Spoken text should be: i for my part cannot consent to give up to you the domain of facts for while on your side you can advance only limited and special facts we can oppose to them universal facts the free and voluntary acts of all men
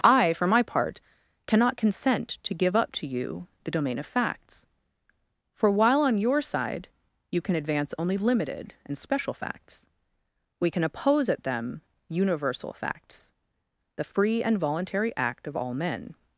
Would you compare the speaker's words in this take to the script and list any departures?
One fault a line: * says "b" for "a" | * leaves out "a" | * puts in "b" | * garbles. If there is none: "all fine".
* says "at" for "to"
* says "act" for "acts"